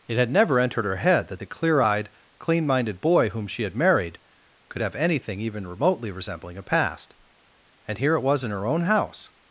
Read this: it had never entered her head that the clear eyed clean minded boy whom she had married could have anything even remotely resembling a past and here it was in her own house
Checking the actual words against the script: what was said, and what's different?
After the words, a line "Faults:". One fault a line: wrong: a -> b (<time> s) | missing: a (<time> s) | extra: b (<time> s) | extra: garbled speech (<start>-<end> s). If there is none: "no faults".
it had never entered her head that the clear eyed clean minded boy whom she had married could have anything even remotely resembling a past and here it was in her own house
Faults:
no faults